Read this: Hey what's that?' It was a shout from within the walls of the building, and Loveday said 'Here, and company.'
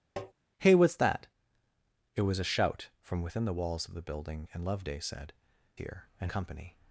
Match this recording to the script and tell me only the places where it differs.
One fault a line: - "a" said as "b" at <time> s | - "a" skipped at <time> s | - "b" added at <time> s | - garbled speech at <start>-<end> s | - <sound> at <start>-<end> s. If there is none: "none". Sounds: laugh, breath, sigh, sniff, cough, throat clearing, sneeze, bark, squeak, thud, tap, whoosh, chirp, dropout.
- tap at 0.2-0.3 s